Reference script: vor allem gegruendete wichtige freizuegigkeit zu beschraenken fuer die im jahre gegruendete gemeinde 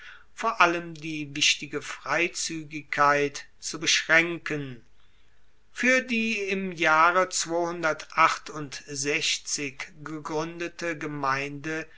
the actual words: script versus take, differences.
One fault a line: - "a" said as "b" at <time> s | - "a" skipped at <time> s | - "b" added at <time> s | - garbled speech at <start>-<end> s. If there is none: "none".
- "gegruendete" said as "die" at 0.9 s